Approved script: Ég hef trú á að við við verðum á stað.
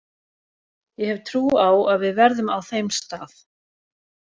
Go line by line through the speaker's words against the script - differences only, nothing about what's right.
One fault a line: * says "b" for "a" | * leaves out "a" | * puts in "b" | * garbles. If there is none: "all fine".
* leaves out "við"
* puts in "þeim"